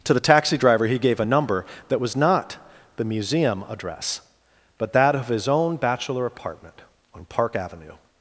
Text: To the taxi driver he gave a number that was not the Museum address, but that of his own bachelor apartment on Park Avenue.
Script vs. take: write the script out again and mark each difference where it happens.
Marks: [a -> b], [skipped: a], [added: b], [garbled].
To the taxi driver he gave a number that was not the Museum address, but that of his own bachelor apartment on Park Avenue.